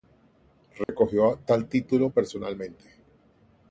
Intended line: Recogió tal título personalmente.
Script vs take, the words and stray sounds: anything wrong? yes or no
yes